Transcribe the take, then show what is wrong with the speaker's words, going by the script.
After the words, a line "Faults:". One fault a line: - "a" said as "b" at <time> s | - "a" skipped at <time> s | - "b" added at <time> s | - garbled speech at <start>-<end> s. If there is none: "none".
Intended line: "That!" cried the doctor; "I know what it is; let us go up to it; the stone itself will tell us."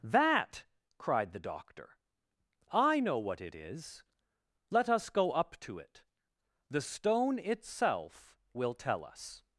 "That!" cried the doctor; "I know what it is; let us go up to it; the stone itself will tell us."
Faults:
none